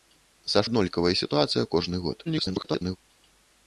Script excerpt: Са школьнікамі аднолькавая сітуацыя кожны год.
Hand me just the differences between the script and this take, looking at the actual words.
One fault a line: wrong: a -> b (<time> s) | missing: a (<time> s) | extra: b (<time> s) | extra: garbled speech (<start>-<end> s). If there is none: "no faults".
missing: школьнікамі (0.6 s)
extra: garbled speech (2.3-3.0 s)